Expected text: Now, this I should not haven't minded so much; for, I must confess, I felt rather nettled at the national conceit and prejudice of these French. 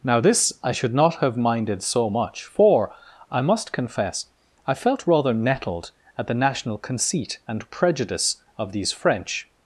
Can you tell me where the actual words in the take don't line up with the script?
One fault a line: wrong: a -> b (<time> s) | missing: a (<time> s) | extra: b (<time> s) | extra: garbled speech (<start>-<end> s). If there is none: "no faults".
wrong: haven't -> have (1.1 s)